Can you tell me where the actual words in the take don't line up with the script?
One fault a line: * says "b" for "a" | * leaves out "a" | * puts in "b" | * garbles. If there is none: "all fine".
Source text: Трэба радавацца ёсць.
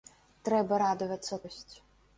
all fine